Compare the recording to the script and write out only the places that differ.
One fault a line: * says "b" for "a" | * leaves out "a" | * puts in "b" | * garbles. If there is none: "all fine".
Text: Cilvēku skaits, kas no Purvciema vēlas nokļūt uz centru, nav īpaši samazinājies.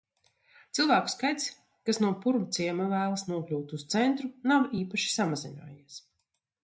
all fine